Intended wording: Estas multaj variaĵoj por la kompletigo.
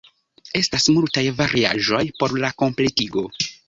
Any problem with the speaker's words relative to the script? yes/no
no